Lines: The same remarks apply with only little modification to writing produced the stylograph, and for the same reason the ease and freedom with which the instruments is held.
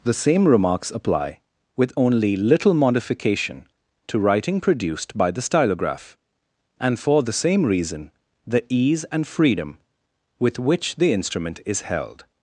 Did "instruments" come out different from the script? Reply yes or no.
yes